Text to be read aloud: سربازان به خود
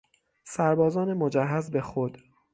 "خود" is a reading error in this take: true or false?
false